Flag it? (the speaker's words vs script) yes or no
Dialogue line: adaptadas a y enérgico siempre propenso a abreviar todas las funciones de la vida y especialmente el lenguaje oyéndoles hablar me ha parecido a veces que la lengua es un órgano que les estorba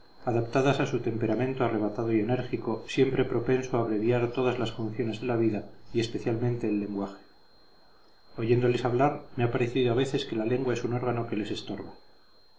yes